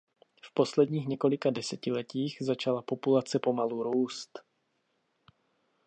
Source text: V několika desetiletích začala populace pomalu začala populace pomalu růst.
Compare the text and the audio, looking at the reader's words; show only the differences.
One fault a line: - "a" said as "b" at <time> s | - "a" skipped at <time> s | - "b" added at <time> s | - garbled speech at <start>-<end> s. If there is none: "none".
- "posledních" added at 0.5 s
- "začala populace pomalu" skipped at 3.8 s